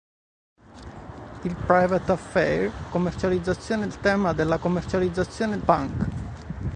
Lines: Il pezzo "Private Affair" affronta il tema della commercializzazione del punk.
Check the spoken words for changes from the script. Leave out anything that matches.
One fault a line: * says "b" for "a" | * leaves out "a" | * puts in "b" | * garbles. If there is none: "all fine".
* leaves out "pezzo"
* says "commercializzazione" for "affronta"
* leaves out "del"